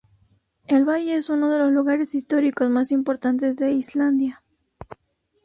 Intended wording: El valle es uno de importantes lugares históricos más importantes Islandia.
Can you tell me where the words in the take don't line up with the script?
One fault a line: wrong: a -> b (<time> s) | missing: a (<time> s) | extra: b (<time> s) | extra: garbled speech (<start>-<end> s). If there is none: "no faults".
wrong: importantes -> los (1.6 s)
extra: de (3.6 s)